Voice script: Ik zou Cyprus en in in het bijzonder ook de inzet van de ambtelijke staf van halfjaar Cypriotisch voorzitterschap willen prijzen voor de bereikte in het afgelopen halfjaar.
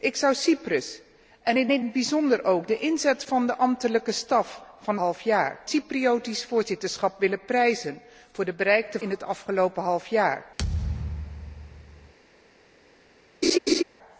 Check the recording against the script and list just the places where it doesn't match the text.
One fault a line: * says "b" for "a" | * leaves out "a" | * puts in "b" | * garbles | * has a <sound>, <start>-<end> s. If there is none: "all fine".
* has a thud, 10.6-12.1 s
* has a laugh, 13.4-13.8 s